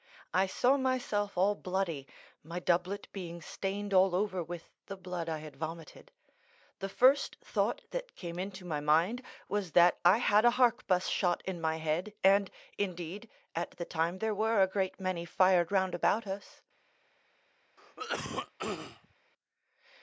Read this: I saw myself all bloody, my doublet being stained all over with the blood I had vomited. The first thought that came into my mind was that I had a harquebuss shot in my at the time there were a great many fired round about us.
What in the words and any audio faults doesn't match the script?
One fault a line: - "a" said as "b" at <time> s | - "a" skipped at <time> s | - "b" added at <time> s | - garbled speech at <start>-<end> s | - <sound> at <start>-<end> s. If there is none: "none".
- "head and indeed" added at 11.8 s
- cough at 17.8-19.2 s